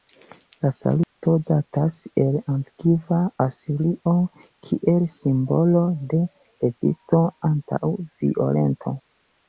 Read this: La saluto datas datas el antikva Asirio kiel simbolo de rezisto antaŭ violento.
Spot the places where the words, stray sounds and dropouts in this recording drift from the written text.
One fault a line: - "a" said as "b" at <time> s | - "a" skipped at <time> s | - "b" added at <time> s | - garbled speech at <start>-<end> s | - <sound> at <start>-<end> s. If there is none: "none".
- dropout at 1.0-1.2 s
- "datas" skipped at 2.0 s